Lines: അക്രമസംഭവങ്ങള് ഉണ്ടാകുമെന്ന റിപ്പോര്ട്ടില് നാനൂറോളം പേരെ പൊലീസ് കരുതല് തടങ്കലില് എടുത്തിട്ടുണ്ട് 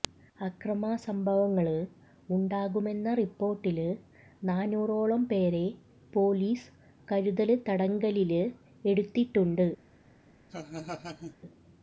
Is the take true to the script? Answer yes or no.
yes